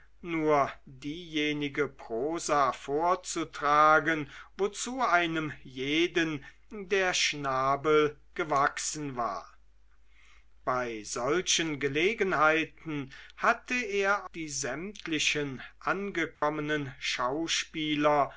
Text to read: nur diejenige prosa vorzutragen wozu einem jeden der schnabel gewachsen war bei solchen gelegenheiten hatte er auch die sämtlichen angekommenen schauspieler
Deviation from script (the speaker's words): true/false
true